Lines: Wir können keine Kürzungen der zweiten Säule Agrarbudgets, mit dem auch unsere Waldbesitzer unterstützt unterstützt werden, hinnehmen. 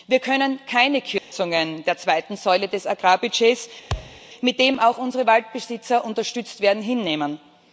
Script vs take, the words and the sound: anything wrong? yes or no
yes